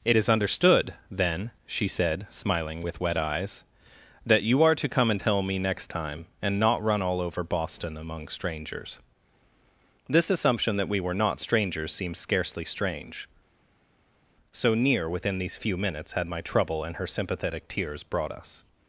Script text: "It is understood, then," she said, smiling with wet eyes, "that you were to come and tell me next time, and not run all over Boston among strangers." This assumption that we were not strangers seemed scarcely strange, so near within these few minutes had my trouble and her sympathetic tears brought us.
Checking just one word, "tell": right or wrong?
right